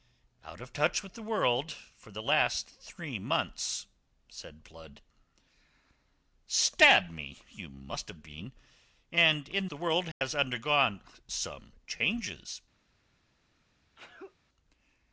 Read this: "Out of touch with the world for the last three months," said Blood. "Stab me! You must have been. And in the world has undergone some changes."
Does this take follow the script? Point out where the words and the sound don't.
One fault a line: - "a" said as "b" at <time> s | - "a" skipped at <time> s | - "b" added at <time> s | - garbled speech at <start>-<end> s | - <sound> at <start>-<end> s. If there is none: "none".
- dropout at 10.1-10.2 s
- sneeze at 14.0-14.4 s